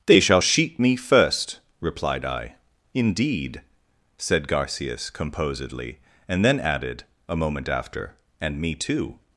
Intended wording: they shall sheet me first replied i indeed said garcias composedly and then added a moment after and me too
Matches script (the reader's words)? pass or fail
pass